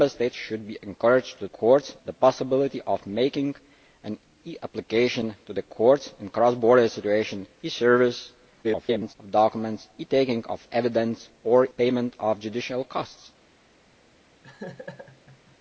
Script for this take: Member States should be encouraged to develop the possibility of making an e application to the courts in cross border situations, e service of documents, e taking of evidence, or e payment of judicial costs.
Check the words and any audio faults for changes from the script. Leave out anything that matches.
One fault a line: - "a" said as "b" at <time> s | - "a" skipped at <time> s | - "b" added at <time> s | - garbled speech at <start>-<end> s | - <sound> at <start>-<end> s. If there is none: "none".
- "develop" said as "courts" at 1.5 s
- garbled speech at 8.6-9.2 s
- "e" skipped at 11.7 s
- laugh at 14.4-15.6 s